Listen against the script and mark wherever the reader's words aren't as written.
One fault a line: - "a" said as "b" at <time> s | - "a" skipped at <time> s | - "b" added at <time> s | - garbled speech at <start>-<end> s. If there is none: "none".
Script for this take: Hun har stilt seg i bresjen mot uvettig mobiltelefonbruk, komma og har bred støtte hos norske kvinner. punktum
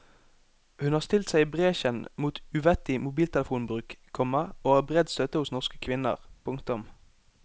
none